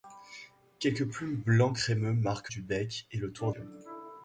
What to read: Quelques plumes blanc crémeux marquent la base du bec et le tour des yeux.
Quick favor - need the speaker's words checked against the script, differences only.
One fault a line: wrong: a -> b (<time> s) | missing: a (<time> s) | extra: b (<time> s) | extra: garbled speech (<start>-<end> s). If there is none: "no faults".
missing: la base (2.5 s)
missing: des (3.5 s)